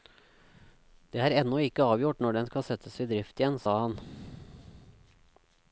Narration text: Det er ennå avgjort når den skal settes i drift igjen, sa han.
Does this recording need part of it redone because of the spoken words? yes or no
yes